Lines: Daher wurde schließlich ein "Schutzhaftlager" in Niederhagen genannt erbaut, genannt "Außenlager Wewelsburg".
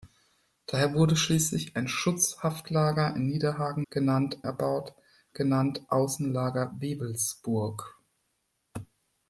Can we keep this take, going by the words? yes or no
yes